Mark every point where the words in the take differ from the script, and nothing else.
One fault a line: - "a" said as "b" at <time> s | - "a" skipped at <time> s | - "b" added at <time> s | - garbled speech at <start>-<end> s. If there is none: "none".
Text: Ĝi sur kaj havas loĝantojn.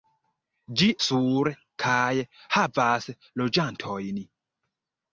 none